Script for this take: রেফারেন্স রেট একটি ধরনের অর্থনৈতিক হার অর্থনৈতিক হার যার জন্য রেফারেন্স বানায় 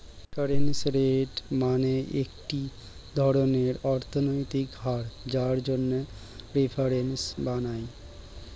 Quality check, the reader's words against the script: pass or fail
fail